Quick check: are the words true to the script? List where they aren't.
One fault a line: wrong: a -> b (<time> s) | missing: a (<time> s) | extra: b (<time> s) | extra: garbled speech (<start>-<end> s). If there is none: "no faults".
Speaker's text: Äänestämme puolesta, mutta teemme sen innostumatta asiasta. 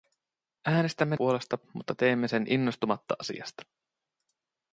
no faults